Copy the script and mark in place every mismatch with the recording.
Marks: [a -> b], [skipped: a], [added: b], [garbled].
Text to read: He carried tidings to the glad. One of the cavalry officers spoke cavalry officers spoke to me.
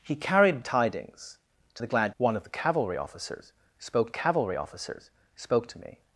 He carried tidings to the glad. One of the cavalry officers spoke cavalry officers spoke to me.